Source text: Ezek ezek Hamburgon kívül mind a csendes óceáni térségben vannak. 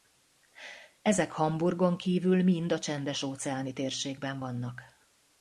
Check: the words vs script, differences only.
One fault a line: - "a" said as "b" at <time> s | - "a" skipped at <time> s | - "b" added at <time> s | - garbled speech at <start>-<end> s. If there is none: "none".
- "ezek" skipped at 1.3 s